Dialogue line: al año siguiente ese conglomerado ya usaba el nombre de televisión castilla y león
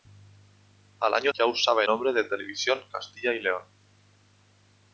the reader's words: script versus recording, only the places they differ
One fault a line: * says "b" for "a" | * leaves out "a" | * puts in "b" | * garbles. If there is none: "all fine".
* leaves out "siguiente ese conglomerado"
* leaves out "el"